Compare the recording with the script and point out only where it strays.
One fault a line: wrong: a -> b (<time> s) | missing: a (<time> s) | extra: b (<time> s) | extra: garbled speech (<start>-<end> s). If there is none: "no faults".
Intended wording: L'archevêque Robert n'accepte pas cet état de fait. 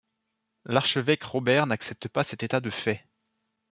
no faults